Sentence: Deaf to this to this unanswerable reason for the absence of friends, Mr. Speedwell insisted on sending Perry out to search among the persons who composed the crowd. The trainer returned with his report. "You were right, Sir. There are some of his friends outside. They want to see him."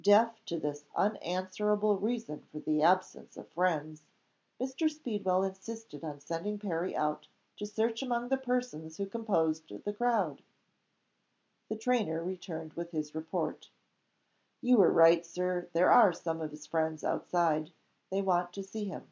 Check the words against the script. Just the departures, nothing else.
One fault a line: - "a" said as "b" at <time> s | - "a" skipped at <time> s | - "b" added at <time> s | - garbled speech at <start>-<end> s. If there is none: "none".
- "to this" skipped at 0.8 s